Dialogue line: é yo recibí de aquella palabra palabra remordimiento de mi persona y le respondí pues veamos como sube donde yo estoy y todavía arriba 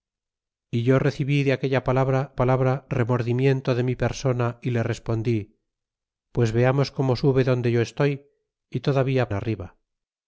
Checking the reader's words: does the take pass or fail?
pass